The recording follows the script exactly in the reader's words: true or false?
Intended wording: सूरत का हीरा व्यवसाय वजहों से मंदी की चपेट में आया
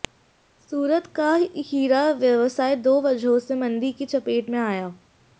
false